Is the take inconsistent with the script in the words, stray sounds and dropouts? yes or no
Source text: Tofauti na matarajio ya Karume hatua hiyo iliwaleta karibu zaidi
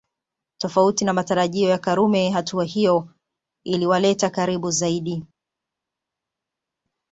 no